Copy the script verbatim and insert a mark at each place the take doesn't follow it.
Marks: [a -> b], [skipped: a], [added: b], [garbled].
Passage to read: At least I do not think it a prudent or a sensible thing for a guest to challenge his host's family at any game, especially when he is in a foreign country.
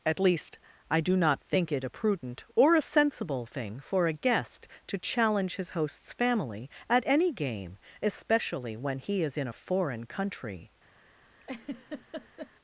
At least I do not think it a prudent or a sensible thing for a guest to challenge his host's family at any game, especially when he is in a foreign country.